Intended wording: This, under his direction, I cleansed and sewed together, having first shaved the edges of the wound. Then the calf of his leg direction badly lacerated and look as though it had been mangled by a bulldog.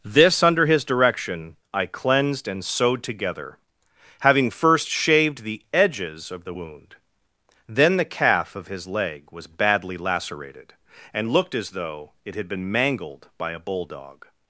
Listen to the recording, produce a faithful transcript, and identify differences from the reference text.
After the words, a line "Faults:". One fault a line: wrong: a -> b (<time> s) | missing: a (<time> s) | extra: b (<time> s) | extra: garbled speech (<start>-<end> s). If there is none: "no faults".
This, under his direction, I cleansed and sewed together, having first shaved the edges of the wound. Then the calf of his leg was badly lacerated and looked as though it had been mangled by a bulldog.
Faults:
wrong: direction -> was (9.3 s)
wrong: look -> looked (11.3 s)